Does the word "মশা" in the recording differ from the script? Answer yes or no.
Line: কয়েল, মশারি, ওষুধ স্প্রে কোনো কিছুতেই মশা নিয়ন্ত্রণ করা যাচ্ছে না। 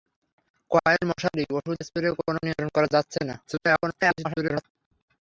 yes